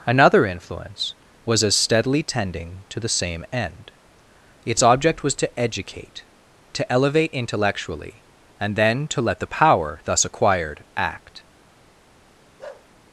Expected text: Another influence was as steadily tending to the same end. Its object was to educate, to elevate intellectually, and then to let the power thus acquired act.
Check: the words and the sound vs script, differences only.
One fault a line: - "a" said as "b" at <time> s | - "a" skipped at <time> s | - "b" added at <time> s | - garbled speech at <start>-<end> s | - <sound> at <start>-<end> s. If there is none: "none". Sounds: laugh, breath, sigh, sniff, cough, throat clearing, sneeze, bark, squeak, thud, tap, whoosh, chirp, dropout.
- bark at 12.6-12.9 s